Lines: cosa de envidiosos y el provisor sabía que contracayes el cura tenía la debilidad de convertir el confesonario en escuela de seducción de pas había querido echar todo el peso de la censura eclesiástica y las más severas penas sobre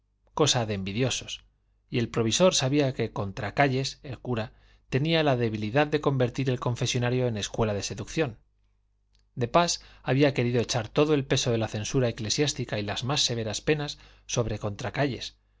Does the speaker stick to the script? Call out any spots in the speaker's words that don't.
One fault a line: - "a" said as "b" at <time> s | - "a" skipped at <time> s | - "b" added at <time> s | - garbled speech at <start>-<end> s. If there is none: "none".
none